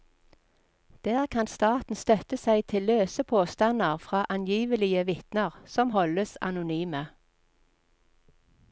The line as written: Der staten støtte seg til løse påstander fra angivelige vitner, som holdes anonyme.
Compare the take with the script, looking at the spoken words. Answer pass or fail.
fail